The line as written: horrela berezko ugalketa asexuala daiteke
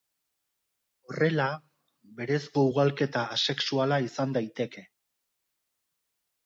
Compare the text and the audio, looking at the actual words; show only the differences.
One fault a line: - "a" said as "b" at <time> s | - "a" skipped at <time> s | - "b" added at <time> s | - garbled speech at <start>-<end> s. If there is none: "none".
- "izan" added at 4.1 s